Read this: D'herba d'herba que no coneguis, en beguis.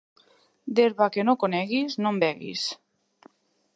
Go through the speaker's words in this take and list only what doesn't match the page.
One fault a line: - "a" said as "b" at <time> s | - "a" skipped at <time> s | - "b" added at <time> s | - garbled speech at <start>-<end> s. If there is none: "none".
- "d'herba" skipped at 1.1 s
- "no" added at 2.0 s